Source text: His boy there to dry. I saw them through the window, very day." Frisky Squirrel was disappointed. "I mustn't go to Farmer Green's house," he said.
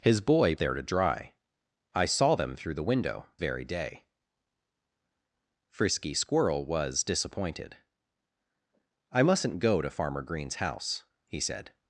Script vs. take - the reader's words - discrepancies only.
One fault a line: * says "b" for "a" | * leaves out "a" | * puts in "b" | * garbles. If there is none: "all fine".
all fine